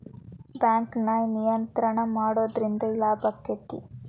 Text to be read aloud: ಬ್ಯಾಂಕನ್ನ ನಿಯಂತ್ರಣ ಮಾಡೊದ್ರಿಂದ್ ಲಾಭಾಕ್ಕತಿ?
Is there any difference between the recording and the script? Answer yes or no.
no